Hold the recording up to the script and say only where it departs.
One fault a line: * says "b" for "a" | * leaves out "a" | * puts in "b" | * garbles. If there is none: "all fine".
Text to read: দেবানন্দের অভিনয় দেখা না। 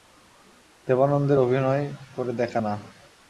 * puts in "করে"